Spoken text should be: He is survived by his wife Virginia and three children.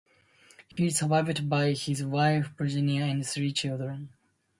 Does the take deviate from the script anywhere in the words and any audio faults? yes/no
yes